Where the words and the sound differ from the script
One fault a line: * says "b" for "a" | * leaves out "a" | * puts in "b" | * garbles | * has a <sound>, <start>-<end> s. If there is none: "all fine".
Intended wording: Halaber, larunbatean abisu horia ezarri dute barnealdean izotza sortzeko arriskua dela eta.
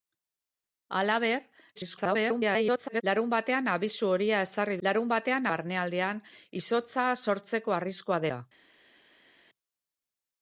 * garbles
* says "larunbatean" for "dute"
* leaves out "dela"